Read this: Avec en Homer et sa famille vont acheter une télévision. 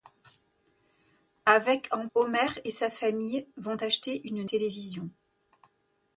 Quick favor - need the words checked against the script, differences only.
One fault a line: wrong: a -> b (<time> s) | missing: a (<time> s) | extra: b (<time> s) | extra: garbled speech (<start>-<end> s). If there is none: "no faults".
no faults